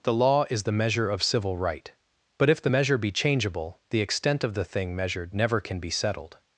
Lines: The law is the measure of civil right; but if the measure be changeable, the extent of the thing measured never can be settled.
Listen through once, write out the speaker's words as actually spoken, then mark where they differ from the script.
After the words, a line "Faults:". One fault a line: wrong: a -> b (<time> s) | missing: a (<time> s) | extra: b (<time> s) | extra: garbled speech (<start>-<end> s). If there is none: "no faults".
The law is the measure of civil right; but if the measure be changeable, the extent of the thing measured never can be settled.
Faults:
no faults